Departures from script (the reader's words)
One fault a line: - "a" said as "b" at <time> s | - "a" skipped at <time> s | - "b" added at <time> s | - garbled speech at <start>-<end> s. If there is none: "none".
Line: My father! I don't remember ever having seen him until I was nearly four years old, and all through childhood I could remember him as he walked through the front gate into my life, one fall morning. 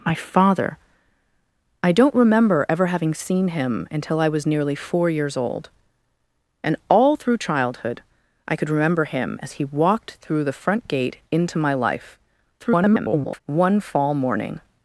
- garbled speech at 12.6-13.4 s